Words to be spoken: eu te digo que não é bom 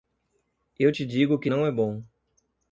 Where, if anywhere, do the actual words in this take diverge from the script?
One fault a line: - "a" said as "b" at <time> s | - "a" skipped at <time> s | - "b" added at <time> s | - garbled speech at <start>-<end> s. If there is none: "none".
none